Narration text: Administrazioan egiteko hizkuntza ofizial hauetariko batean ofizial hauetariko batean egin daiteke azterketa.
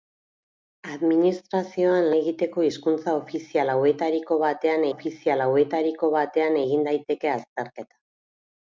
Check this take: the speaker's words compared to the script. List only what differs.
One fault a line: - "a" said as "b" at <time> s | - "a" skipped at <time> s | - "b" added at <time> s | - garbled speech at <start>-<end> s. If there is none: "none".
none